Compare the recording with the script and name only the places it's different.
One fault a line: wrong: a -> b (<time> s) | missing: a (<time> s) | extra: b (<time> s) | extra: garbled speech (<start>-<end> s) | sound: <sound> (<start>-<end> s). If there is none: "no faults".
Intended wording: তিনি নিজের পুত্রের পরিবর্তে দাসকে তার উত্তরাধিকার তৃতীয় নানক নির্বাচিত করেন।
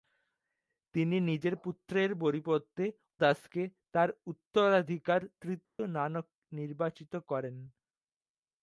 sound: dropout (5.7-5.8 s)